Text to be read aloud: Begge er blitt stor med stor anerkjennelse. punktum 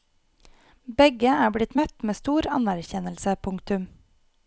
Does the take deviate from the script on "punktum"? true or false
false